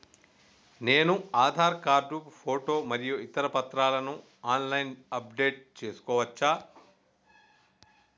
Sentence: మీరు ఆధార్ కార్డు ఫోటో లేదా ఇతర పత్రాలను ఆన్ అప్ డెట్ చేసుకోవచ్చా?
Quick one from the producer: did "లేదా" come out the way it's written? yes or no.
no